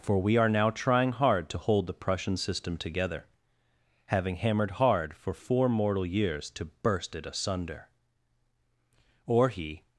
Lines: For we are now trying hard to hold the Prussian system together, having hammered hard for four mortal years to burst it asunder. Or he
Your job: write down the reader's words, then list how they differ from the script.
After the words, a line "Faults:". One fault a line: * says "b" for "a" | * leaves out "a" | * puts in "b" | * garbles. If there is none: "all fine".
For we are now trying hard to hold the Prussian system together, having hammered hard for four mortal years to burst it asunder. Or he
Faults:
all fine